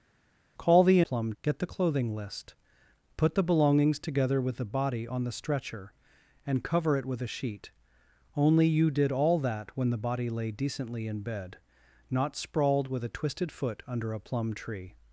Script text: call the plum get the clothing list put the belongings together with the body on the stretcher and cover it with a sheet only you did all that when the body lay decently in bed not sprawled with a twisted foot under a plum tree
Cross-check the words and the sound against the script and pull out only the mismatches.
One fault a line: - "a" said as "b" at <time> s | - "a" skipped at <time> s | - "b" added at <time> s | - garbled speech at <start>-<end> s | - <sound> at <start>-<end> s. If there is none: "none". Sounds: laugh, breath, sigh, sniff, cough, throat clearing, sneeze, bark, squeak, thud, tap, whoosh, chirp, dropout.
none